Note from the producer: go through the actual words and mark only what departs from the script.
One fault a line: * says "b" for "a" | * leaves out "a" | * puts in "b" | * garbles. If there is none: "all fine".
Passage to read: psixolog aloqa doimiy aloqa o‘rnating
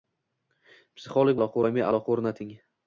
all fine